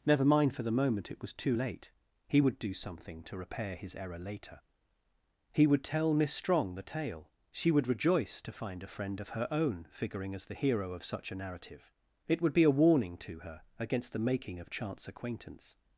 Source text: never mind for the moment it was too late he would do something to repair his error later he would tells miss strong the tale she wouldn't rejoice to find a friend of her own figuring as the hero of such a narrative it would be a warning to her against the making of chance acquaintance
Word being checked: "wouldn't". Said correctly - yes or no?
no